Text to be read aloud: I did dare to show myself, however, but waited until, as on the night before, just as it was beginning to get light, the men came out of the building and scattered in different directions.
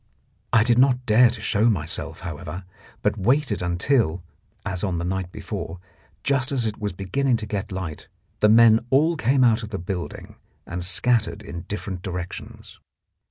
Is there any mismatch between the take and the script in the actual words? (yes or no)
yes